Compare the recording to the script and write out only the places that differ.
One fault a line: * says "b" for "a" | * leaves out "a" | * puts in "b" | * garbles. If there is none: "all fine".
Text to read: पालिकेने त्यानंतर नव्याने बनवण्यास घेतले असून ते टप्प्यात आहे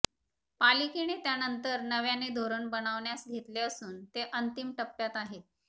* puts in "धोरण"
* puts in "अंतिम"